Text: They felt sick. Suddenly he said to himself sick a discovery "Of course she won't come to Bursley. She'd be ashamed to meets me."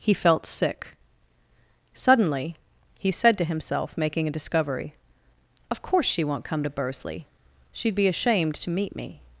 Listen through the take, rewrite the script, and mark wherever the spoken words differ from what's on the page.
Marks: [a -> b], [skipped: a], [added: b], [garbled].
[They -> He] felt sick. Suddenly he said to himself [sick -> making] a discovery "Of course she won't come to Bursley. She'd be ashamed to [meets -> meet] me."